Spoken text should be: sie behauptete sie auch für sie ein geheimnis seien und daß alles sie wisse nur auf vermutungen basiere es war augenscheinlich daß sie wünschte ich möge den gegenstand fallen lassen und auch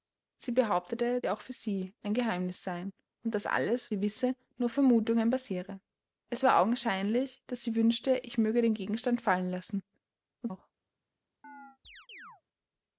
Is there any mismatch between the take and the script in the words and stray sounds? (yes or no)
yes